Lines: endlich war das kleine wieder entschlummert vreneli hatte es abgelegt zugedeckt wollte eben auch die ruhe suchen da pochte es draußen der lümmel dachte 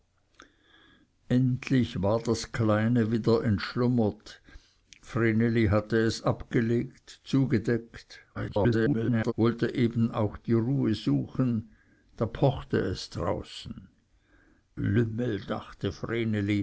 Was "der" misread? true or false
true